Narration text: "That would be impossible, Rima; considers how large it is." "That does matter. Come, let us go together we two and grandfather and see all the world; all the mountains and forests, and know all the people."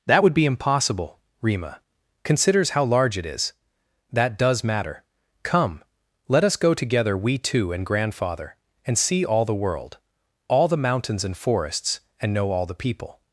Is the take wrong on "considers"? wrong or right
right